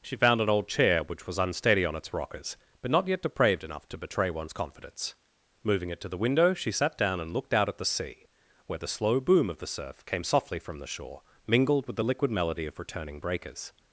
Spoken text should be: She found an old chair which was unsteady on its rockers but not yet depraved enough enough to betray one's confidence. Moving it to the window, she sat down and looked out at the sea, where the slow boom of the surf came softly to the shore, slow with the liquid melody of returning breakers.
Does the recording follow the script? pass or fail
fail